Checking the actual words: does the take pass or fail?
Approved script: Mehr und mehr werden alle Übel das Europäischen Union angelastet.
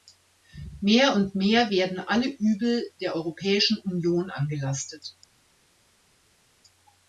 fail